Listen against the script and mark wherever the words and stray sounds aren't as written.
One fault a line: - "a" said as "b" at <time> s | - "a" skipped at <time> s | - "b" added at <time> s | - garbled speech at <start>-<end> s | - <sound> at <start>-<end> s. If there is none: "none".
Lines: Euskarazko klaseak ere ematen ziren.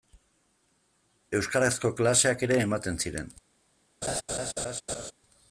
- laugh at 4.0-5.1 s